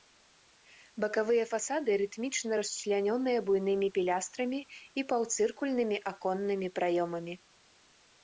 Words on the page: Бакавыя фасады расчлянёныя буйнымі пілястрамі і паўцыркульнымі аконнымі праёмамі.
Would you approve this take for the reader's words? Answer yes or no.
no